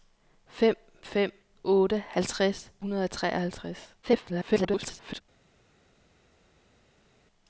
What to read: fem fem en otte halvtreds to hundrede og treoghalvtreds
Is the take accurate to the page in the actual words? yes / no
no